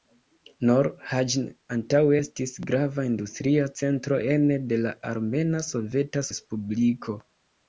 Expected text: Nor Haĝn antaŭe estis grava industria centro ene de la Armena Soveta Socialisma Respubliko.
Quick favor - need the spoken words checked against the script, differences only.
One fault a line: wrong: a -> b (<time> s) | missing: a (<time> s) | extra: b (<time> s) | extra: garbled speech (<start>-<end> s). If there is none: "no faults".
missing: Socialisma (6.3 s)